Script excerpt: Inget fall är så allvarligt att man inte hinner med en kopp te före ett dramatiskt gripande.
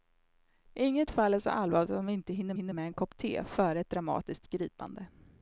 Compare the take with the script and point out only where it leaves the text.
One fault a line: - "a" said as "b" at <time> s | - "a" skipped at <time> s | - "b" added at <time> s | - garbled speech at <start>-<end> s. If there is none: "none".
- "hinner" added at 2.5 s